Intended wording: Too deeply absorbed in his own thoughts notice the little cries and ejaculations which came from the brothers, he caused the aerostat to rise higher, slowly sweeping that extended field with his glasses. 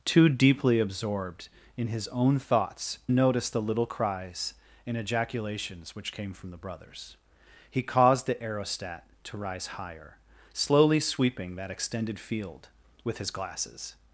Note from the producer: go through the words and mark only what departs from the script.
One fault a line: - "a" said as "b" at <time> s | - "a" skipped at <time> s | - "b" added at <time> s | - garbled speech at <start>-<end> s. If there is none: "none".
none